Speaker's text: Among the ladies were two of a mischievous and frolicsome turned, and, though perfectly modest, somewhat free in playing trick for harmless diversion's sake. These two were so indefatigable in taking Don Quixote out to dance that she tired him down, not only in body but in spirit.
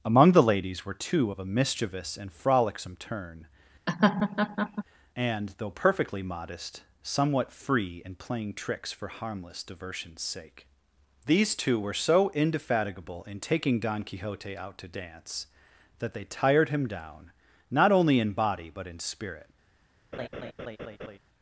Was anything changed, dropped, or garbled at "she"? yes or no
yes